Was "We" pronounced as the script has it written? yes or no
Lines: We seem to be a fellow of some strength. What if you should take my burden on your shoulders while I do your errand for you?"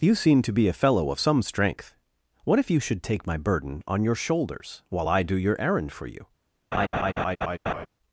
no